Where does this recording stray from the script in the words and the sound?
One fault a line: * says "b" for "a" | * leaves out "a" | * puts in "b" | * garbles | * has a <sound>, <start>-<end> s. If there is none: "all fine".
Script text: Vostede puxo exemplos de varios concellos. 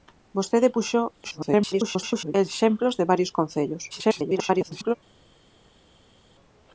* garbles
* garbles